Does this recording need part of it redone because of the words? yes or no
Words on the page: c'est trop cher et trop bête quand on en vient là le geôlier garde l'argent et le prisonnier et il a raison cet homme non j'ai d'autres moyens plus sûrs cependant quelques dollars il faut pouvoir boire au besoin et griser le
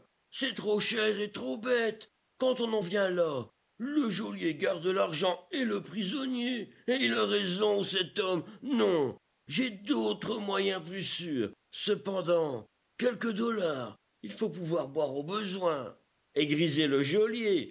no